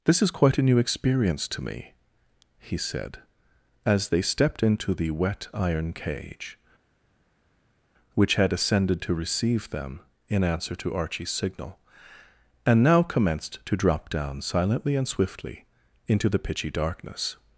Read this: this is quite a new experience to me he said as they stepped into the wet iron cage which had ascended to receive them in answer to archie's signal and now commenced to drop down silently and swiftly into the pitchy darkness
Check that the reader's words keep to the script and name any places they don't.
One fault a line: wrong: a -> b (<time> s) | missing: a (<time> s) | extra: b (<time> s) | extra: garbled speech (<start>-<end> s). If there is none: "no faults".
no faults